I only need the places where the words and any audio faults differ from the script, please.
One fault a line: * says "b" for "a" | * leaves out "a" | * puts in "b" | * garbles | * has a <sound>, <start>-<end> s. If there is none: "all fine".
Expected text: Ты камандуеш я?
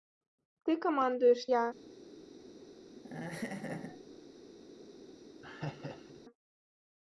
* has a laugh, 3.0-4.2 s
* has a laugh, 5.4-6.2 s